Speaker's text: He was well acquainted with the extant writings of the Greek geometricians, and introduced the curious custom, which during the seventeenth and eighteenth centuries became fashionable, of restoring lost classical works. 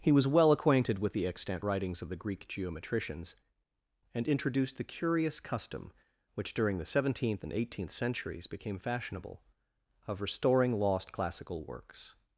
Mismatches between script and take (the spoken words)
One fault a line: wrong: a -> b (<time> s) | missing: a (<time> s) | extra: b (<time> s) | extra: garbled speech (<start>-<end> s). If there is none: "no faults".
no faults